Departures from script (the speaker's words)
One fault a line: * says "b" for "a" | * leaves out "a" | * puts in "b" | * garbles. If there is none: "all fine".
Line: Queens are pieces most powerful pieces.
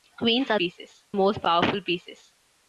all fine